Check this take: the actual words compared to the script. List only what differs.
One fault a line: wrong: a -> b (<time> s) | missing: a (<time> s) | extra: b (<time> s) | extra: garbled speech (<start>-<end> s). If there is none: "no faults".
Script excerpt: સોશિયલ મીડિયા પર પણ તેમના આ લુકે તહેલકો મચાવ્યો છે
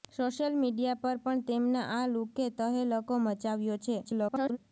extra: garbled speech (4.0-4.6 s)